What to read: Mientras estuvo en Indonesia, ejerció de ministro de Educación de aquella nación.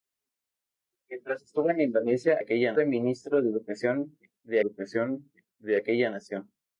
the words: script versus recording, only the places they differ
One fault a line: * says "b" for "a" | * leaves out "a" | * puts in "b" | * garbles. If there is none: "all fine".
* says "aquella" for "ejerció"
* puts in "Educación de"